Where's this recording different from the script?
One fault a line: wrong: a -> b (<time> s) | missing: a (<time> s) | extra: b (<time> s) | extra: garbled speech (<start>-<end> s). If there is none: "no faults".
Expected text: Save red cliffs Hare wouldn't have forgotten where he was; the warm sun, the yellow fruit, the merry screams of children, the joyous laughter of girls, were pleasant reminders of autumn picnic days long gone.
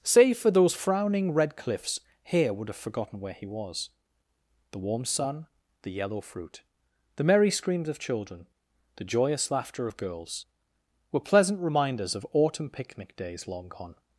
extra: for those frowning (0.4 s)
wrong: wouldn't -> would (2.5 s)